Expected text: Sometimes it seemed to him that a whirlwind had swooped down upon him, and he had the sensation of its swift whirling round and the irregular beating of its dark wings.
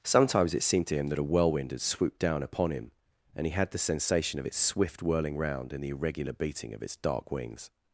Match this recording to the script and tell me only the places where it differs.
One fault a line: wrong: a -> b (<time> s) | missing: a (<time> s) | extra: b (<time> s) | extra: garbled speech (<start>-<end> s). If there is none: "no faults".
no faults